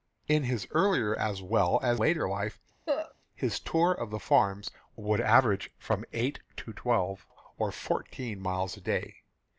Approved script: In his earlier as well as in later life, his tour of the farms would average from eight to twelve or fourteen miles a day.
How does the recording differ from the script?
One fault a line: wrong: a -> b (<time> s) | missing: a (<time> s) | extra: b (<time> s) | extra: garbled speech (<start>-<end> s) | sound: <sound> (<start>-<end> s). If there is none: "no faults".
missing: in (2.0 s)
sound: cough (2.9-3.1 s)